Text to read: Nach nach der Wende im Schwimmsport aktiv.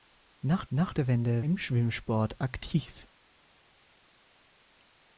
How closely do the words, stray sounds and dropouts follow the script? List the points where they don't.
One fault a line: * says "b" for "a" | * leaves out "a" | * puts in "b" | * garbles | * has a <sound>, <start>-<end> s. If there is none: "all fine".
all fine